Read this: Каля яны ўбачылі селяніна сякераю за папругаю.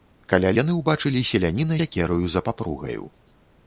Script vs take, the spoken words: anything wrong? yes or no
no